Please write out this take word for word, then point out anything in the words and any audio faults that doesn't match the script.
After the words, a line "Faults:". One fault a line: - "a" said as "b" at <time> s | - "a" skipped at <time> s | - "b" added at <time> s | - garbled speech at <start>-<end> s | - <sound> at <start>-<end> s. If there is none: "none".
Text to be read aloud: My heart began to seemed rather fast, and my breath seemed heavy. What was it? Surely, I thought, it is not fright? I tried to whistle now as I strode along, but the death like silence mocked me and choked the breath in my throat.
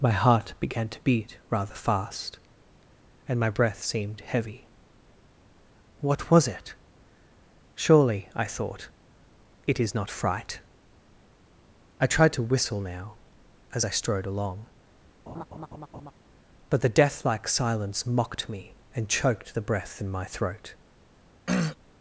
My heart began to beat rather fast, and my breath seemed heavy. What was it? Surely, I thought, it is not fright? I tried to whistle now as I strode along, but the death like silence mocked me and choked the breath in my throat.
Faults:
- "seemed" said as "beat" at 1.0 s
- laugh at 15.3-16.1 s
- throat clearing at 21.5-21.8 s